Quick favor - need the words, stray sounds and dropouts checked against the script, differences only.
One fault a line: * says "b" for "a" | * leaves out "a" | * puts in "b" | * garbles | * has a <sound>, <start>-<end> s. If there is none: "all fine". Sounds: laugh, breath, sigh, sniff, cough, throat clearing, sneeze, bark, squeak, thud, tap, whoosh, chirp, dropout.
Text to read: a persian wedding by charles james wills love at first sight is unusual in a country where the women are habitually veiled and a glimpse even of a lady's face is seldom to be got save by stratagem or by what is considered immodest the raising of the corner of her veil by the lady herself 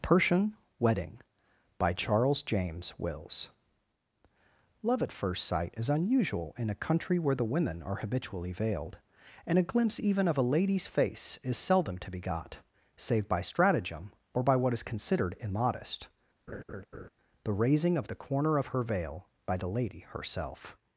* leaves out "a"
* has a laugh, 16.5-17.1 s